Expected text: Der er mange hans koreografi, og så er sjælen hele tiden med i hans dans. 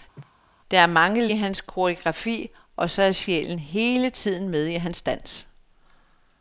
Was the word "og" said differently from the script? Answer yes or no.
no